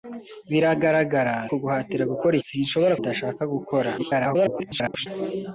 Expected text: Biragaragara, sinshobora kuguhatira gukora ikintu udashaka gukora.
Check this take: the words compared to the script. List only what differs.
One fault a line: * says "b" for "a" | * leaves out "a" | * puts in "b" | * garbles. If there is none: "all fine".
* leaves out "sinshobora"
* says "sinshobora" for "ikintu"
* garbles